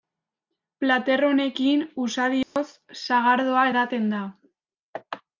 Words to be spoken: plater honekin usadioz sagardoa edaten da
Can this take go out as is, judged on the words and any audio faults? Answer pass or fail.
fail